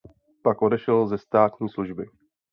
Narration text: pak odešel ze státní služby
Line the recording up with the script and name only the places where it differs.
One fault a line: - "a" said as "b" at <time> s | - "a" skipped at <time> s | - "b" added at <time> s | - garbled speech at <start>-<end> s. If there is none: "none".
none